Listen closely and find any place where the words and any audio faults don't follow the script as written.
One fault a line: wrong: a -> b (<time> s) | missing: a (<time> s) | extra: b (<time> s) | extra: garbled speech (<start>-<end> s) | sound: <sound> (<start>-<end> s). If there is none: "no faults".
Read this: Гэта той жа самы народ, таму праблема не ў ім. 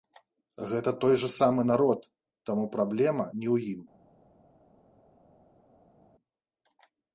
no faults